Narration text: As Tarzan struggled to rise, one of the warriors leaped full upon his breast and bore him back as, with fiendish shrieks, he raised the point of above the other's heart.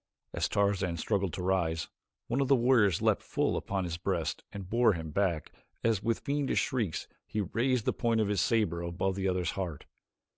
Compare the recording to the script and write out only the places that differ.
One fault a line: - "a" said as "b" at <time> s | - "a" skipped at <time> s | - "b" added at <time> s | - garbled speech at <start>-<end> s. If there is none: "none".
- "his saber" added at 8.3 s